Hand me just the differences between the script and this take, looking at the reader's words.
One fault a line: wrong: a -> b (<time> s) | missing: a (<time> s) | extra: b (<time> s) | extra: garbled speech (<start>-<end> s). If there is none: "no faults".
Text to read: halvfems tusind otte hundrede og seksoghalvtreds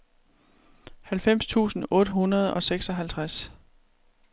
no faults